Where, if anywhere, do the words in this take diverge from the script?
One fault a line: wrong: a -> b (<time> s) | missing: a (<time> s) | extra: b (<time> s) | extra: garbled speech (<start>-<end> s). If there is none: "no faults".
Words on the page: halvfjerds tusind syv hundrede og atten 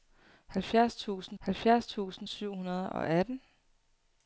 extra: halvfjerds tusind (1.4 s)